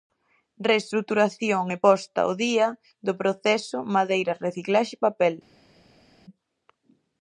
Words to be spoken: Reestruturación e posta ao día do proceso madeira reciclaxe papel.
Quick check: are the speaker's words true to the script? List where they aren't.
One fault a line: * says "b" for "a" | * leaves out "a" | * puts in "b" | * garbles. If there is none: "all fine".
all fine